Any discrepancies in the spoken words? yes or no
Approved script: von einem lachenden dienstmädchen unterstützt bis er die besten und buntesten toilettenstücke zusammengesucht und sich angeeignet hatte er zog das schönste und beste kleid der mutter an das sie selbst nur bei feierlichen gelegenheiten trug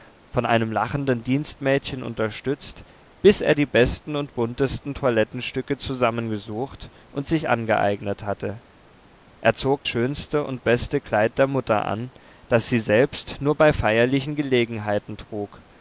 yes